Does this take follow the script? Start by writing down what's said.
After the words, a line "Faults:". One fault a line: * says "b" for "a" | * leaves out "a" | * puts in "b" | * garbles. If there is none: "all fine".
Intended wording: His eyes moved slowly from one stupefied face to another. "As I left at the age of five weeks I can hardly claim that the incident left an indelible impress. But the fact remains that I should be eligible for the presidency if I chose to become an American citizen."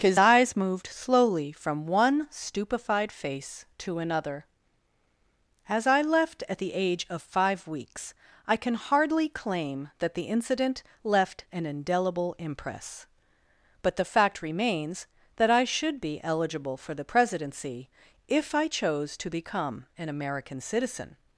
His eyes moved slowly from one stupefied face to another. "As I left at the age of five weeks I can hardly claim that the incident left an indelible impress. But the fact remains that I should be eligible for the presidency if I chose to become an American citizen."
Faults:
all fine